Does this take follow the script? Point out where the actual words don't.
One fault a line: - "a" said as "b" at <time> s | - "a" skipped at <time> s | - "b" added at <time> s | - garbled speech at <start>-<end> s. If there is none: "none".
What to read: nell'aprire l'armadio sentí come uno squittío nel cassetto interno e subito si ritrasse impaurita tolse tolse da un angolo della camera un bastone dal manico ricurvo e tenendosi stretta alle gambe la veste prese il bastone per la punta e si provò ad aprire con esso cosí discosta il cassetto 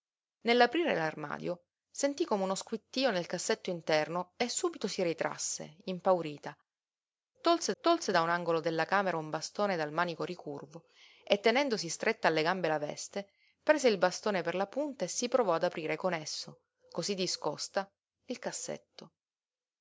none